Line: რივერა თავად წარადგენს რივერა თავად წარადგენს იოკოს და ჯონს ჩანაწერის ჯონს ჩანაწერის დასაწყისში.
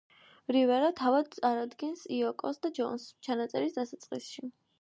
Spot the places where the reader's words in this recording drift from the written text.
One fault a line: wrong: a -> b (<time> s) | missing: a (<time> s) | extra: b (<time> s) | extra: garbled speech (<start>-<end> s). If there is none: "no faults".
missing: რივერა თავად წარადგენს (2.0 s)
missing: ჯონს ჩანაწერის (3.8 s)